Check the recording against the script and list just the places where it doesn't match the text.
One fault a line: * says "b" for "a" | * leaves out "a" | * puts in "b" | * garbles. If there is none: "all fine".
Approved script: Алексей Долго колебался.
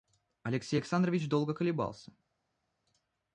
* puts in "Александрович"